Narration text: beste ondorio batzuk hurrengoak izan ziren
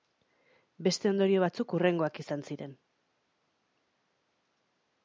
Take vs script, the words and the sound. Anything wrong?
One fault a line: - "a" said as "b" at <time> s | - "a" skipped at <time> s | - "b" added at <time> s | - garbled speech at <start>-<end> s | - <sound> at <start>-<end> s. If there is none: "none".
none